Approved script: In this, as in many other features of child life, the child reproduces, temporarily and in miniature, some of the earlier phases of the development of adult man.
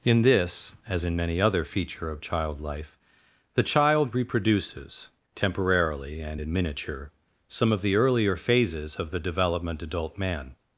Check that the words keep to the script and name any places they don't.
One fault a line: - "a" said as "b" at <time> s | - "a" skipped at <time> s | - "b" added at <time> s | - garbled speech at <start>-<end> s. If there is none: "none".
- "features" said as "feature" at 1.6 s
- "of" skipped at 9.8 s